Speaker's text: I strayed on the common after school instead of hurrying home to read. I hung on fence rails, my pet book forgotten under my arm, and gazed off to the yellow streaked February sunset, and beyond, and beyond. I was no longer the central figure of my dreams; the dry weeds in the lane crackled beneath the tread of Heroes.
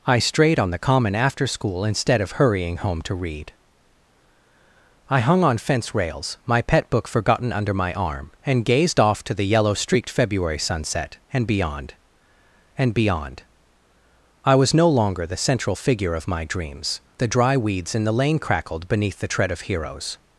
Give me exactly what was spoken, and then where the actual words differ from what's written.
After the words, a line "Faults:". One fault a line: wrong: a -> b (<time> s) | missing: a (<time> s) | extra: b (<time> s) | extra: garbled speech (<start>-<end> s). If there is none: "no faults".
I strayed on the common after school instead of hurrying home to read. I hung on fence rails, my pet book forgotten under my arm, and gazed off to the yellow streaked February sunset, and beyond, and beyond. I was no longer the central figure of my dreams; the dry weeds in the lane crackled beneath the tread of Heroes.
Faults:
no faults